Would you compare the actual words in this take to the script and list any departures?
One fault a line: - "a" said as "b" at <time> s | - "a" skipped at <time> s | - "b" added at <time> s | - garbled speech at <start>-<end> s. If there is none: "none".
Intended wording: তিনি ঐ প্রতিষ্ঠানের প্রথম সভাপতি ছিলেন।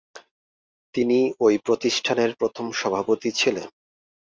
none